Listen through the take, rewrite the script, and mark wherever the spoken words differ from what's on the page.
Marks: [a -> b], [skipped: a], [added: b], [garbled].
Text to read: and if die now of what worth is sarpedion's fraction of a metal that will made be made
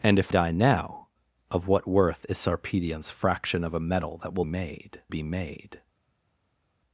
and if die now of what worth is sarpedion's fraction of a metal that will made be made